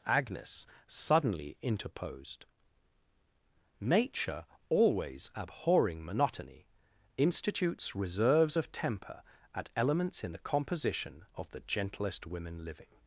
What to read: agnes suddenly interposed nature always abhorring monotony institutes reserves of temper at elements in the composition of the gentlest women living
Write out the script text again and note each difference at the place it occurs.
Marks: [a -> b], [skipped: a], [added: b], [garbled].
agnes suddenly interposed nature always abhorring monotony institutes reserves of temper at elements in the composition of the gentlest women living